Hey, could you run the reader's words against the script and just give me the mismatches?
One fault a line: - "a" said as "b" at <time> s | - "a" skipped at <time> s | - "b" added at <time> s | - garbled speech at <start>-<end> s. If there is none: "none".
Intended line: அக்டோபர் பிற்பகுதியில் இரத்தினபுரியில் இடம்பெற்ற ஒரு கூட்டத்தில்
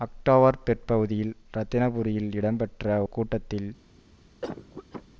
- "ஒரு" skipped at 3.0 s